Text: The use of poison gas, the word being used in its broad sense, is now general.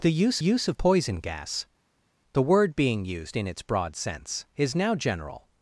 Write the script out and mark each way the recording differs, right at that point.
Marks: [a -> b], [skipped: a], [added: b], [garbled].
The use [added: use] of poison gas, the word being used in its broad sense, is now general.